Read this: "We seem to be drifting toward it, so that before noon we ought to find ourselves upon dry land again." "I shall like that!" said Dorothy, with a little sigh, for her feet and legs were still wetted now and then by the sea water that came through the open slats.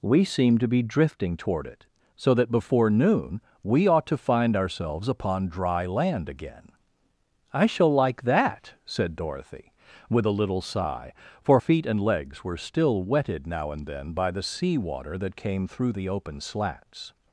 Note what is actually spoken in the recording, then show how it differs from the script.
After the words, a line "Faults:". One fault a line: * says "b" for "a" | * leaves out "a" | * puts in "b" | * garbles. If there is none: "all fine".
"We seem to be drifting toward it, so that before noon we ought to find ourselves upon dry land again." "I shall like that!" said Dorothy, with a little sigh, for feet and legs were still wetted now and then by the sea water that came through the open slats.
Faults:
* leaves out "her"